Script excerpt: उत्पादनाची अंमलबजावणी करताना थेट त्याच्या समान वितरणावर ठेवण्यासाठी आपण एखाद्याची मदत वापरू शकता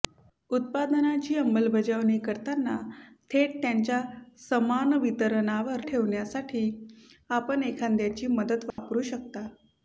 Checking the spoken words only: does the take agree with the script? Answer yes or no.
yes